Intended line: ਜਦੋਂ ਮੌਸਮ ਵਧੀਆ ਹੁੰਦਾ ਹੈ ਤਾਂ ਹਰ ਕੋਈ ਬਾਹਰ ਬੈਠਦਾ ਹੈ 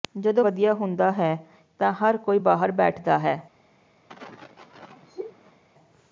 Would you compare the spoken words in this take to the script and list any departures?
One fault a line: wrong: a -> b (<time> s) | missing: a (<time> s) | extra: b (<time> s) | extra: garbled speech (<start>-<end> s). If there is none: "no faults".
missing: ਮੌਸਮ (0.4 s)